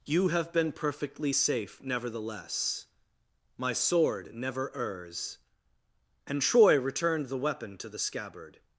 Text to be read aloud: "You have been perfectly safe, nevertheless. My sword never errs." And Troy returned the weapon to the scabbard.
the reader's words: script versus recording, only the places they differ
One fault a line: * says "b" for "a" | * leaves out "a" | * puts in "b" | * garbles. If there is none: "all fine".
all fine